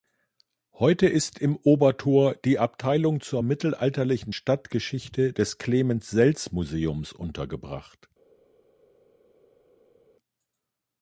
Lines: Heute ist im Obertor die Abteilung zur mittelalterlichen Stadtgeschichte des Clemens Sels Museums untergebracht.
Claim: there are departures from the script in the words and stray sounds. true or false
false